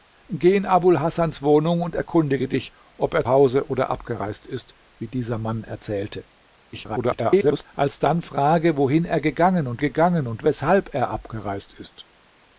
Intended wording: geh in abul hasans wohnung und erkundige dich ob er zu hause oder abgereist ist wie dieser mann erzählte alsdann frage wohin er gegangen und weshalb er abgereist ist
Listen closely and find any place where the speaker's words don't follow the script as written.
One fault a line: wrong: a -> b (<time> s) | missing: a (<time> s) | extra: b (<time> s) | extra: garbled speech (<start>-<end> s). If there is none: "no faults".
missing: zu (3.2 s)
extra: garbled speech (6.7-7.7 s)
extra: gegangen und (9.8 s)